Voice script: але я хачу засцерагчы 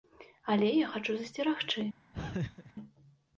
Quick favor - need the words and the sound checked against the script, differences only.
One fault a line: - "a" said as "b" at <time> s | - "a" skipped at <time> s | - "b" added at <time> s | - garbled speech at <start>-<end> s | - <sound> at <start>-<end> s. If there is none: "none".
- laugh at 2.1-2.7 s